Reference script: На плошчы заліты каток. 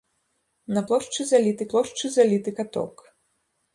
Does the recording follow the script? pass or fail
fail